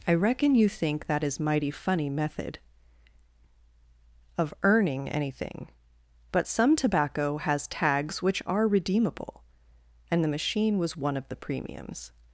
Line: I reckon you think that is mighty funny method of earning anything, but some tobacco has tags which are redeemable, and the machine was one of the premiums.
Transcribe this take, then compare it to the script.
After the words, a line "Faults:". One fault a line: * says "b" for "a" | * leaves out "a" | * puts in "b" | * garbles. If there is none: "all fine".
I reckon you think that is mighty funny method of earning anything, but some tobacco has tags which are redeemable, and the machine was one of the premiums.
Faults:
all fine